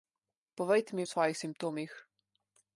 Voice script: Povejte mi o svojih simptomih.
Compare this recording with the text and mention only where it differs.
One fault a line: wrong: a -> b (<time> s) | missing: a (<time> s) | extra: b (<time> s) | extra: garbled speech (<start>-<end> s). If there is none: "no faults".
no faults